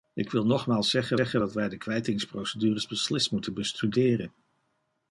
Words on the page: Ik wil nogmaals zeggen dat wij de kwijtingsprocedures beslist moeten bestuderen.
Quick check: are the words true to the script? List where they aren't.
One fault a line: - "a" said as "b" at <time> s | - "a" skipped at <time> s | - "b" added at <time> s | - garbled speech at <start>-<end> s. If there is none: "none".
- "zeggen" added at 1.1 s